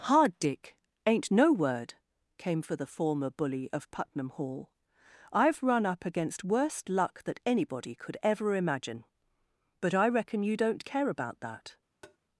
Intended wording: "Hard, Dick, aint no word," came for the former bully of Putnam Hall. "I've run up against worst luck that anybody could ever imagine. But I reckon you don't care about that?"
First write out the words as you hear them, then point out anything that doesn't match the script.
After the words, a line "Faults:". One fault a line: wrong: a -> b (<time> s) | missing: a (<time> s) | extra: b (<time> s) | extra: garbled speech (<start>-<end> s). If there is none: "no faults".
"Hard, Dick, aint no word," came for the former bully of Putnam Hall. "I've run up against worst luck that anybody could ever imagine. But I reckon you don't care about that?"
Faults:
no faults